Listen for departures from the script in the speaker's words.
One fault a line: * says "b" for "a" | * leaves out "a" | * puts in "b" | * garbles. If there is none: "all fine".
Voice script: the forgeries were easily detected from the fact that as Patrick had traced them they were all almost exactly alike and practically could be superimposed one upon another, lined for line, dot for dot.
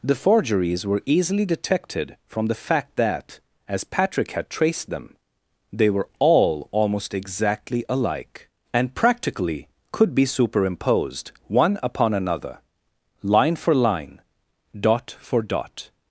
* says "line" for "lined"